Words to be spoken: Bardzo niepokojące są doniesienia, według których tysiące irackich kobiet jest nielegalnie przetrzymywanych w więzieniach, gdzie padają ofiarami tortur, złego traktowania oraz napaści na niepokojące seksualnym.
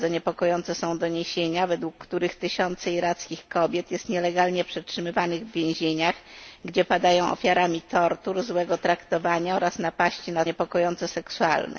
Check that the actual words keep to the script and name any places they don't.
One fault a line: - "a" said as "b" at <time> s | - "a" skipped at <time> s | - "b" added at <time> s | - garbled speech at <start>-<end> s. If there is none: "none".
none